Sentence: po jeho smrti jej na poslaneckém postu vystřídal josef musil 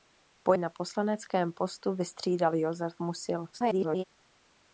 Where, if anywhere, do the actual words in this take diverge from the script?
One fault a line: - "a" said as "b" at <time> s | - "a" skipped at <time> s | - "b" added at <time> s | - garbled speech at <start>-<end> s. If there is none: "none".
- "jeho smrti jej" skipped at 0.5 s
- garbled speech at 3.5-4.0 s